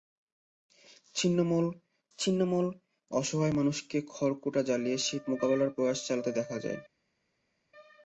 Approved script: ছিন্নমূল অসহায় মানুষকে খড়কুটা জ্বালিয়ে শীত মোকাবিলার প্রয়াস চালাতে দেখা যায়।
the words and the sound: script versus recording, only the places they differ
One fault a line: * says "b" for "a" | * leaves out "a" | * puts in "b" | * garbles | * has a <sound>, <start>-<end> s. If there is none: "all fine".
* puts in "ছিন্নমূল"